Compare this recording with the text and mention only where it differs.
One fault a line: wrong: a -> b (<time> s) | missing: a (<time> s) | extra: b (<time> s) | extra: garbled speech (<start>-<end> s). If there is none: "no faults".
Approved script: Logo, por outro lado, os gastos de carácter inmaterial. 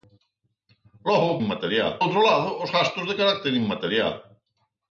wrong: por -> inmaterial (1.4 s)